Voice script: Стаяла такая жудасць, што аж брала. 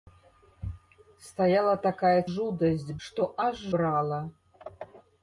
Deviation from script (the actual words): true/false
false